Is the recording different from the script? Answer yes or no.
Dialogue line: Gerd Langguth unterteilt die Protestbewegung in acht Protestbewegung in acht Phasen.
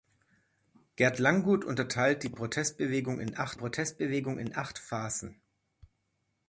no